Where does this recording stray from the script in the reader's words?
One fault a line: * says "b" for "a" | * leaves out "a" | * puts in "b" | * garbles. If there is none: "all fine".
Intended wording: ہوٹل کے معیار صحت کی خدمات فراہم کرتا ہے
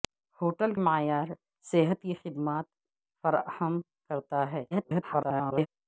* leaves out "کے"
* garbles